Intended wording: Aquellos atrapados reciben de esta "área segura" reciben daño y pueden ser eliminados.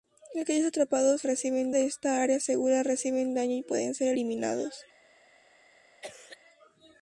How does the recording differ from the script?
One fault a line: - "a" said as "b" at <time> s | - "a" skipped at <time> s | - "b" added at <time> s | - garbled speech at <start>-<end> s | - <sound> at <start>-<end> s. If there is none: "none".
- cough at 6.0-6.4 s